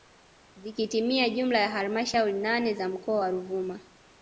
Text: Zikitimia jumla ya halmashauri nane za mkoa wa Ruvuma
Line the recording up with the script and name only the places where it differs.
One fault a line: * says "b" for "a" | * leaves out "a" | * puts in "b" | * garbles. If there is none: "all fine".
all fine